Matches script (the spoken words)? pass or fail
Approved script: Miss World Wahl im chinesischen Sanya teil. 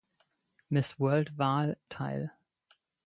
fail